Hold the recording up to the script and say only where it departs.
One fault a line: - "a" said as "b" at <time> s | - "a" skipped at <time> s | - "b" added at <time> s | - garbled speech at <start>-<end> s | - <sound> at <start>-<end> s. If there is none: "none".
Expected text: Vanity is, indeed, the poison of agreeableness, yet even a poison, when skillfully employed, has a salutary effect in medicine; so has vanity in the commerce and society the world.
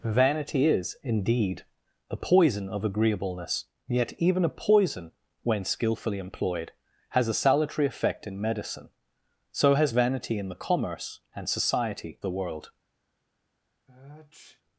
- sniff at 13.9-14.6 s